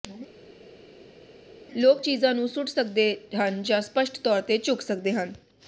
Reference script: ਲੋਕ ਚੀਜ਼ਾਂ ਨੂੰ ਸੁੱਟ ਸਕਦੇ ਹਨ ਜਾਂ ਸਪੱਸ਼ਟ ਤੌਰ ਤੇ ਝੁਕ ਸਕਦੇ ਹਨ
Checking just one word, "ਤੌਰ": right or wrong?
right